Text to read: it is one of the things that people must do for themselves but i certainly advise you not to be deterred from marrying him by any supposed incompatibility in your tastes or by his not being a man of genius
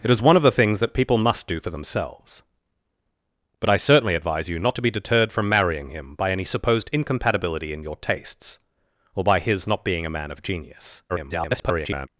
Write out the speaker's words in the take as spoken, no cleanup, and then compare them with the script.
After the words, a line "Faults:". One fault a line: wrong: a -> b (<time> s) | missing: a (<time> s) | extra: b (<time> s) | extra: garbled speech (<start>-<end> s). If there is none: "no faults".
it is one of the things that people must do for themselves but i certainly advise you not to be deterred from marrying him by any supposed incompatibility in your tastes or by his not being a man of genius [garbled]
Faults:
extra: garbled speech (11.1-12.1 s)